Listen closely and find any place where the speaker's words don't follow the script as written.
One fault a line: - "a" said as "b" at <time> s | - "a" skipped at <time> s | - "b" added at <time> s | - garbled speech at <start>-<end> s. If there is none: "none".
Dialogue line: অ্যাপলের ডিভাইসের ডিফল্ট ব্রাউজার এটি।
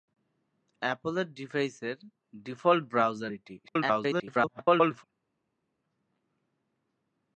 - garbled speech at 3.6-5.0 s